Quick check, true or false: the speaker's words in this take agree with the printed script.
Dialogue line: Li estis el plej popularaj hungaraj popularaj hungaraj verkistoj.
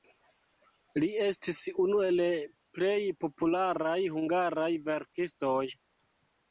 false